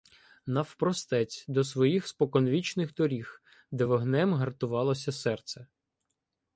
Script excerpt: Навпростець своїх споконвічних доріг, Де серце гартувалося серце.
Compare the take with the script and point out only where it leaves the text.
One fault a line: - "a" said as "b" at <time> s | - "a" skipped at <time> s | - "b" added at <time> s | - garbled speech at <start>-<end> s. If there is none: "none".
- "до" added at 1.5 s
- "серце" said as "вогнем" at 3.8 s